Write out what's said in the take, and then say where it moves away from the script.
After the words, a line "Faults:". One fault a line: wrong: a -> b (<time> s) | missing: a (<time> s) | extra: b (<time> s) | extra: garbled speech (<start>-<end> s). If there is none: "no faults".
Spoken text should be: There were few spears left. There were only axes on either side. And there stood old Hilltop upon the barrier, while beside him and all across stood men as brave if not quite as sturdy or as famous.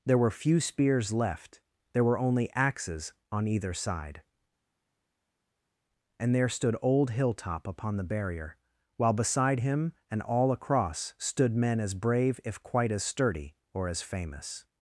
There were few spears left. There were only axes on either side. And there stood old Hilltop upon the barrier, while beside him and all across stood men as brave if quite as sturdy or as famous.
Faults:
missing: not (12.6 s)